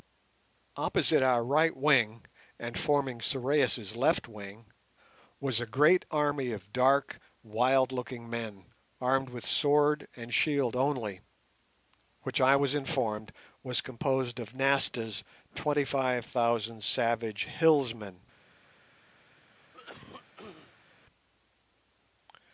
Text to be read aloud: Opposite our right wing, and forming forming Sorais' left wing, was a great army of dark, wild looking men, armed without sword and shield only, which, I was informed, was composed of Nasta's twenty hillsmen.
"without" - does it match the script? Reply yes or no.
no